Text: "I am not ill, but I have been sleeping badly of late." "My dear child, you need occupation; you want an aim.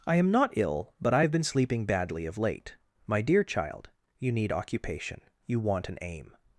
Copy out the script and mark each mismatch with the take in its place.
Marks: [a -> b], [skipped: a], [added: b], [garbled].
"I am not ill, but I have been sleeping badly of late." "My dear child, you need occupation; you want an aim.